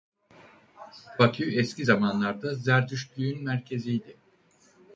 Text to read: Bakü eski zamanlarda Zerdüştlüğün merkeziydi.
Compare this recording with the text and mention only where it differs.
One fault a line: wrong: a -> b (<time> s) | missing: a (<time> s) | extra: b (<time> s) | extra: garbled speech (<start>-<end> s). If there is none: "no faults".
no faults